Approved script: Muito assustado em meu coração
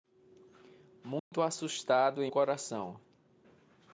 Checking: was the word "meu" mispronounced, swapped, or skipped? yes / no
yes